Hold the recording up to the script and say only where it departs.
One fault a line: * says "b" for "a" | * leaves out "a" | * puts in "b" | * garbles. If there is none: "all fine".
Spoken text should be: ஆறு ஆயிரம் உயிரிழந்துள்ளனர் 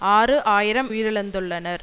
all fine